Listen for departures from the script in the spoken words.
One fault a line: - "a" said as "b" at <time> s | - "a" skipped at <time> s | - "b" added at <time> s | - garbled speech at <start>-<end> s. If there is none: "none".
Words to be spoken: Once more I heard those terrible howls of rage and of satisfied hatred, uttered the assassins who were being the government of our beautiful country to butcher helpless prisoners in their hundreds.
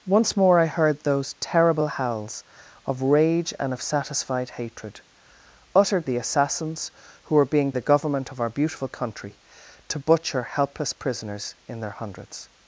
none